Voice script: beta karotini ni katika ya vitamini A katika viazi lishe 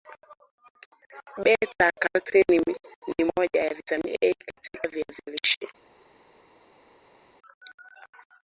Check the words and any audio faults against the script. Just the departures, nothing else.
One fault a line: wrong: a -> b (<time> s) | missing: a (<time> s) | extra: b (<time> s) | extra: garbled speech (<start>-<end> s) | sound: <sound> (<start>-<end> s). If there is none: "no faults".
wrong: katika -> moja (3.4 s)